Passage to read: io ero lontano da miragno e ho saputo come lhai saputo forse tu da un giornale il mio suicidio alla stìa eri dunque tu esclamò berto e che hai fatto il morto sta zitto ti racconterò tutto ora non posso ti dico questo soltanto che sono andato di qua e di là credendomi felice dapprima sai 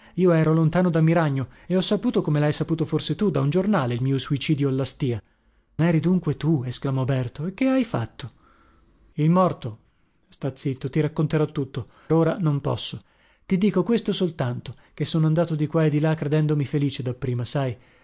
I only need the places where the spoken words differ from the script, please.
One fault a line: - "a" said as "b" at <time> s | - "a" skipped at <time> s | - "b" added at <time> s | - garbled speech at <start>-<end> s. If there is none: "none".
none